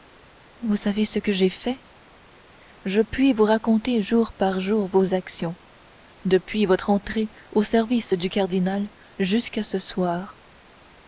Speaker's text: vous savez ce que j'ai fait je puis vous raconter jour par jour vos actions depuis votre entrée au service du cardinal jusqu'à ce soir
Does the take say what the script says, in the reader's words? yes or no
yes